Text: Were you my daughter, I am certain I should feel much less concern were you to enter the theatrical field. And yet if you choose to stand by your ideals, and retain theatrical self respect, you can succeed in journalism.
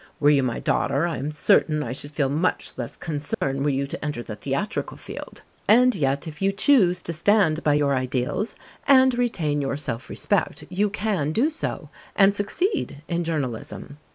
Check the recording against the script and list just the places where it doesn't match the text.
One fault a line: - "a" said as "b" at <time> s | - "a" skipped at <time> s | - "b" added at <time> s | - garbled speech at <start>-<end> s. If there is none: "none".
- "theatrical" said as "your" at 9.6 s
- "do so and" added at 11.3 s